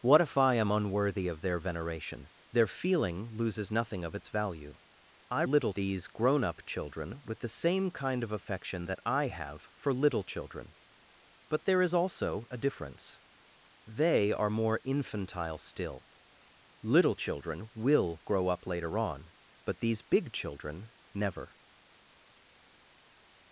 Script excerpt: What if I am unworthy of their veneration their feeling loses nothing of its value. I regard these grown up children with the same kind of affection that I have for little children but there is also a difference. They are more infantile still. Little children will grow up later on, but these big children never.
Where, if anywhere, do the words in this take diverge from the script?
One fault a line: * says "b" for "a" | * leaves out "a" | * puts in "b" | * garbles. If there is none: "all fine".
* says "little" for "regard"